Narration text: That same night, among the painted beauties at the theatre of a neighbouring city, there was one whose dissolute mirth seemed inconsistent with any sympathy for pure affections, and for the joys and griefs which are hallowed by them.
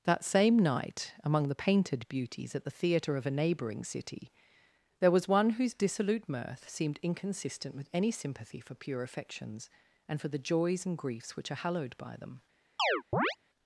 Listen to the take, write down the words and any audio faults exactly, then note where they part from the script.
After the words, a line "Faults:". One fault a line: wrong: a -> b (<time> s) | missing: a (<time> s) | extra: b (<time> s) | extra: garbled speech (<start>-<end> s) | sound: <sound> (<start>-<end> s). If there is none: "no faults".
That same night, among the painted beauties at the theatre of a neighbouring city, there was one whose dissolute mirth seemed inconsistent with any sympathy for pure affections, and for the joys and griefs which are hallowed by them.
Faults:
sound: chirp (12.8-13.4 s)